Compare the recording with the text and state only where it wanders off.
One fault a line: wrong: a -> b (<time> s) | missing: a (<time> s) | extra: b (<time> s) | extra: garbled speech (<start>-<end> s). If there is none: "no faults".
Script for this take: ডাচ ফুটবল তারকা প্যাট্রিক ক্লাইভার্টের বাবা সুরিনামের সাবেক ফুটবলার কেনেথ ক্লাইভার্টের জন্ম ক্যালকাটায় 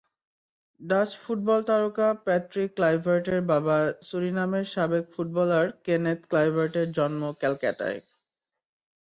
no faults